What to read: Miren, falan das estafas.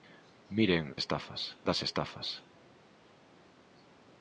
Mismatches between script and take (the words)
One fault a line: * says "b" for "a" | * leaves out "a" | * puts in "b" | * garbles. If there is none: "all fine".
* says "estafas" for "falan"